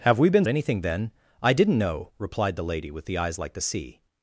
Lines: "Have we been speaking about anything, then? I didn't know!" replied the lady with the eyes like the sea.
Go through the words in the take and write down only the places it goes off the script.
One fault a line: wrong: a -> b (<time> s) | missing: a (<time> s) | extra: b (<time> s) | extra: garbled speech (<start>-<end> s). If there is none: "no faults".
missing: speaking about (0.5 s)